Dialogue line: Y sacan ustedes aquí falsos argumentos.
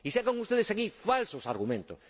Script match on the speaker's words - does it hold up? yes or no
yes